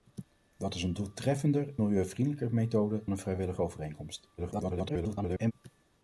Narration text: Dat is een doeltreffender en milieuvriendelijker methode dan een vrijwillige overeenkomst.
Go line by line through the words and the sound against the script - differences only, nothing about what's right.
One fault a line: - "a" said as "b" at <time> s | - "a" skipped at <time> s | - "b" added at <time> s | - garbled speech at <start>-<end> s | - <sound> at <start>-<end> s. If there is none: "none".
- "en" skipped at 1.8 s
- "dan" skipped at 3.1 s
- garbled speech at 4.4-5.5 s